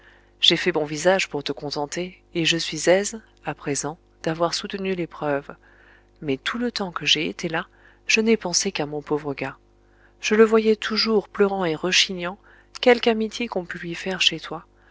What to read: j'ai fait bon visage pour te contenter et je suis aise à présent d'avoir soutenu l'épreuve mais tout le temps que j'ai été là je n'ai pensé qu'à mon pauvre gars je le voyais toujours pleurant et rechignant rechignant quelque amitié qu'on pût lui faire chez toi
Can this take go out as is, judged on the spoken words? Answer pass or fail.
fail